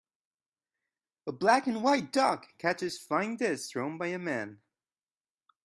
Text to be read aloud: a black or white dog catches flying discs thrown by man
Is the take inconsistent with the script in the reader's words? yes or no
yes